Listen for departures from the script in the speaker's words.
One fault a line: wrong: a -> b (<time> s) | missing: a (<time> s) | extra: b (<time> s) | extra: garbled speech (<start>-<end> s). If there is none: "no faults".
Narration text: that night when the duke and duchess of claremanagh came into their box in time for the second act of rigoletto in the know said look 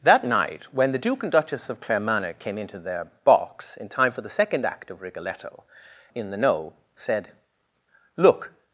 no faults